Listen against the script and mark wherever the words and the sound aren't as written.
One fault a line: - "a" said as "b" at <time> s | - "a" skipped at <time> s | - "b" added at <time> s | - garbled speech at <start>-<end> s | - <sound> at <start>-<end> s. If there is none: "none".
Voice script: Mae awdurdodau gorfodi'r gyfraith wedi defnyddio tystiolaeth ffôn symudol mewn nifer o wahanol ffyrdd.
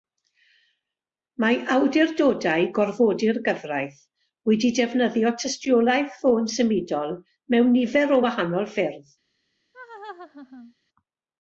- laugh at 9.7-10.7 s